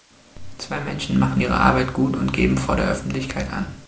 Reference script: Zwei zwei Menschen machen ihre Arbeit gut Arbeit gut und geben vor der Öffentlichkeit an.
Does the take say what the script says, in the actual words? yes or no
no